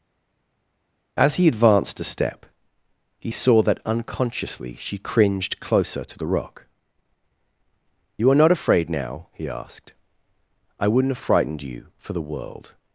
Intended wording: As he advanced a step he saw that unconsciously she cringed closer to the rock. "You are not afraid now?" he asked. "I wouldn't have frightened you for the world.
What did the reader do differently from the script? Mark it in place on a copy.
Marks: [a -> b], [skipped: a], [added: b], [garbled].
As he advanced a step he saw that unconsciously she cringed closer to the rock. "You are not afraid now?" he asked. "I wouldn't have frightened you for the world.